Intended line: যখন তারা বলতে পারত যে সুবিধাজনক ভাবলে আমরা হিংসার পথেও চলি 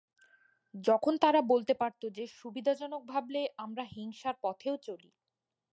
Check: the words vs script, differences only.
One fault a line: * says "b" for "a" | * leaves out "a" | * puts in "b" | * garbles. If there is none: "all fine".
all fine